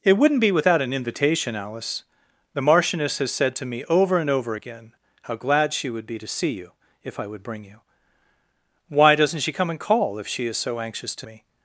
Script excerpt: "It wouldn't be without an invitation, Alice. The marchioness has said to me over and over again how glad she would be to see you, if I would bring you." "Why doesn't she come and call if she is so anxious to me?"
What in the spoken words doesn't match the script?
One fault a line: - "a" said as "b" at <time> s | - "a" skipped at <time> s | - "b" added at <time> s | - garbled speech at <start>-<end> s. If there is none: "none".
none